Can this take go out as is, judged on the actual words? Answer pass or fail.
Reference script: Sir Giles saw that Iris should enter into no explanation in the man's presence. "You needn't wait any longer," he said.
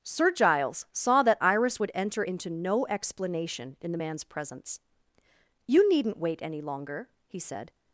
fail